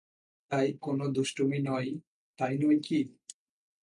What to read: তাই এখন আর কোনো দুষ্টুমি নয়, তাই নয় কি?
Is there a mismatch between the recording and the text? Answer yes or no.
yes